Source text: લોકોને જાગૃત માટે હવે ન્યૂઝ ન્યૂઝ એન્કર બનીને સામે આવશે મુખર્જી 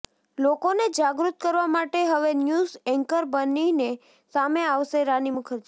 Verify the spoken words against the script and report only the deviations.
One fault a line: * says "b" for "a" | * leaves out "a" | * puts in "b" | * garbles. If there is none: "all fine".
* puts in "કરવા"
* leaves out "ન્યૂઝ"
* puts in "રાની"